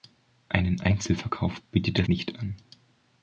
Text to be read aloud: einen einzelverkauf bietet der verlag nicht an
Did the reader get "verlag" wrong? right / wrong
wrong